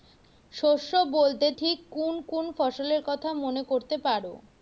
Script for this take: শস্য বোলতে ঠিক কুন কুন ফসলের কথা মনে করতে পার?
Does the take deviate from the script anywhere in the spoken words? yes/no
no